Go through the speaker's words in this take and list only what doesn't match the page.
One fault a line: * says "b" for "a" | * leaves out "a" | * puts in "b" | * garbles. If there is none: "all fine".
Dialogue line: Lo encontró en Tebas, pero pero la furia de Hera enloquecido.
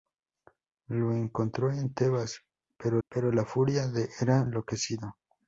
all fine